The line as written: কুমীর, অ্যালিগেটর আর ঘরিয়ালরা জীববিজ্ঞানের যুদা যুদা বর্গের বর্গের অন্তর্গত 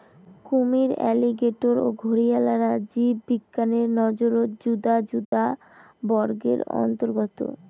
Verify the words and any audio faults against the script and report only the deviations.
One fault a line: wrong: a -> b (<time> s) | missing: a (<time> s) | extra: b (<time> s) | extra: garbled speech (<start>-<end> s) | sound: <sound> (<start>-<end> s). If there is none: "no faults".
wrong: আর -> ও (1.8 s)
extra: নজরত (4.0 s)
sound: dropout (5.2-5.3 s)
missing: বর্গের (6.6 s)